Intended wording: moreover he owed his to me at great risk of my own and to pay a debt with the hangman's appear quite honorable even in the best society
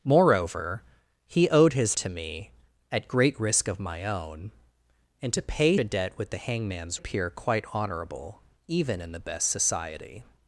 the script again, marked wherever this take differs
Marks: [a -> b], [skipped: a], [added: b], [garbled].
moreover he owed his to me at great risk of my own and to pay a debt with the hangman's appear quite honorable even in the best society